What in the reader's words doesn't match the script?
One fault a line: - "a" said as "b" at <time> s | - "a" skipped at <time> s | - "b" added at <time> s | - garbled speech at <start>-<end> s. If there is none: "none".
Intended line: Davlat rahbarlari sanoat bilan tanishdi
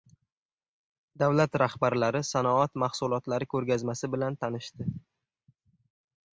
- "mahsulotlari ko‘rgazmasi" added at 2.9 s